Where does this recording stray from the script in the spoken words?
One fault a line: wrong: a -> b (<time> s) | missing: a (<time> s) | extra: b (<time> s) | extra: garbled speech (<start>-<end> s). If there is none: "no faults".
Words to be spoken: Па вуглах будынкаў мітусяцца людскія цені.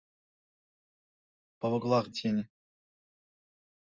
missing: будынкаў мітусяцца людскія (2.0 s)